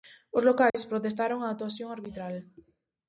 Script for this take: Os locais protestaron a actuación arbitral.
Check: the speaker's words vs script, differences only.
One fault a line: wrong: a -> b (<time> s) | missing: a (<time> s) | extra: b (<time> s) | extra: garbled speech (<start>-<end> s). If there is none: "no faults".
no faults